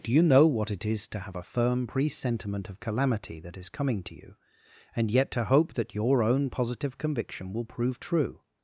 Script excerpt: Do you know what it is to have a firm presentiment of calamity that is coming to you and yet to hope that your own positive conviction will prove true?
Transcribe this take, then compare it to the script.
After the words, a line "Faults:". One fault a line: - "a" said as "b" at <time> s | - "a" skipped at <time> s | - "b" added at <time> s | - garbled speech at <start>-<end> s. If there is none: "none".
Do you know what it is to have a firm presentiment of calamity that is coming to you and yet to hope that your own positive conviction will prove true?
Faults:
none